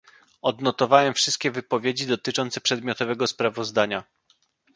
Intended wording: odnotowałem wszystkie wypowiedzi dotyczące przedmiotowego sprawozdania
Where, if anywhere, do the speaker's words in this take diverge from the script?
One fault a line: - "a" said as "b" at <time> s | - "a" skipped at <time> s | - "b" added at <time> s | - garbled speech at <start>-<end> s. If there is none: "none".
none